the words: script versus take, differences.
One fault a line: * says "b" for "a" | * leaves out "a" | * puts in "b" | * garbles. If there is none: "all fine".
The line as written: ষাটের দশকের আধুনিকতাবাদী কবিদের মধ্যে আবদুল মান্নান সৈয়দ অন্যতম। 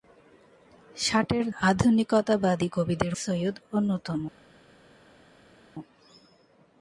* leaves out "দশকের"
* leaves out "মধ্যে আবদুল মান্নান"